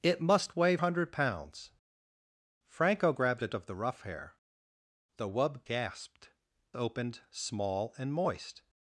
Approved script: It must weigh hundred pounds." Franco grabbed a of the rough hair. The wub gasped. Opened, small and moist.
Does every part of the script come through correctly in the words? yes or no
yes